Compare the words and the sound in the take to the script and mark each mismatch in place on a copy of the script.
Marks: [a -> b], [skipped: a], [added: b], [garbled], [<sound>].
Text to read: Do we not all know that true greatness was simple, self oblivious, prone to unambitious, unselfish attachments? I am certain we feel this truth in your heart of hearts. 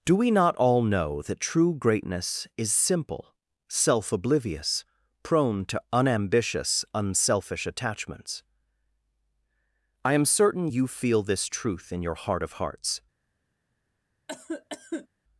Do we not all know that true greatness [was -> is] simple, self oblivious, prone to unambitious, unselfish attachments? I am certain [we -> you] feel this truth in your heart of hearts. [cough]